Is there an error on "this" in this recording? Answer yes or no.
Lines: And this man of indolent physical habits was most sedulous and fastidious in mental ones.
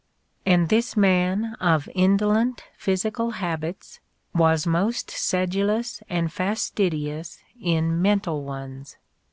no